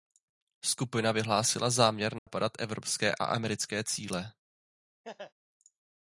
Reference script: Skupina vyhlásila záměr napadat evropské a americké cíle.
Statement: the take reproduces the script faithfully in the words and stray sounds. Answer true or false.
false